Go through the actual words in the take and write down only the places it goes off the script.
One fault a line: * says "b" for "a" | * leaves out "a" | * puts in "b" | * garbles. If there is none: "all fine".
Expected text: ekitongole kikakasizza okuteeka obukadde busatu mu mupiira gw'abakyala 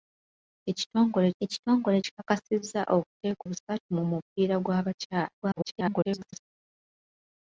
* puts in "ekitongole"
* leaves out "obukadde"
* garbles